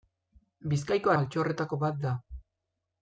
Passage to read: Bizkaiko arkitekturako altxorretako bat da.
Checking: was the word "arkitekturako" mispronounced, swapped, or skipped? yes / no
yes